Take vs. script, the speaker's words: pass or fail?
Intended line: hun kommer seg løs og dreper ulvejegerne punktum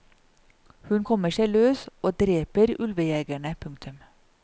pass